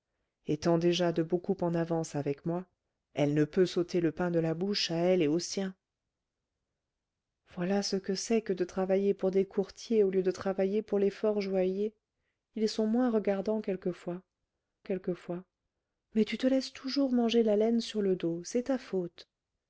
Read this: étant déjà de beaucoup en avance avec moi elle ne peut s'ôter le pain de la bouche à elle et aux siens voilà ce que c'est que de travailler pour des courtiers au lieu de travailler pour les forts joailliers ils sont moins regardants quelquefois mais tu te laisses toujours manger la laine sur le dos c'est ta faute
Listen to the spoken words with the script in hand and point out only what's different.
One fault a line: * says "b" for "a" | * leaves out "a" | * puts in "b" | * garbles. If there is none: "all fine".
* puts in "quelquefois"